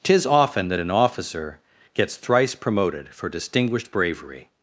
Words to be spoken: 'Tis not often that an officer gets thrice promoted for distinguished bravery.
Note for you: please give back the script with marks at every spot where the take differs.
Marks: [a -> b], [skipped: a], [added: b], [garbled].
'Tis [skipped: not] often that an officer gets thrice promoted for distinguished bravery.